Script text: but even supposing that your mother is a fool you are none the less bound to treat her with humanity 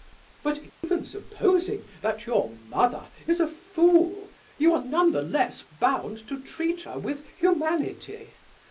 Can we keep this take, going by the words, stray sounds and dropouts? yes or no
no